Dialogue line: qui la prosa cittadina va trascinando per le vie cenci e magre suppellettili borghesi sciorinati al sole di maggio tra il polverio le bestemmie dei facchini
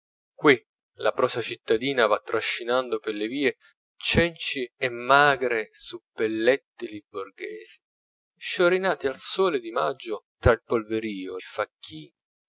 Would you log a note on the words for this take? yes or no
yes